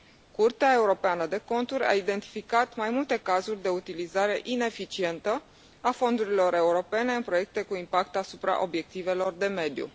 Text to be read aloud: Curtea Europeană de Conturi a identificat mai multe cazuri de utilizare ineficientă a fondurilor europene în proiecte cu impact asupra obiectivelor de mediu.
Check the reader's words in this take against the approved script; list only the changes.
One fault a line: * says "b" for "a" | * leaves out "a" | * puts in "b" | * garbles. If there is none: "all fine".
all fine